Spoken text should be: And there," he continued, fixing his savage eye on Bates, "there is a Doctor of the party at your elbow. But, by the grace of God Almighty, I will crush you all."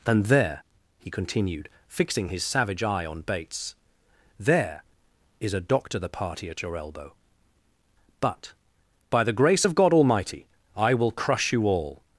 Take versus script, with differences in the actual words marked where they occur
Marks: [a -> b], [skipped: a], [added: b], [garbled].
And there," he continued, fixing his savage eye on Bates, "there is a Doctor [skipped: of] the party at your elbow. But, by the grace of God Almighty, I will crush you all."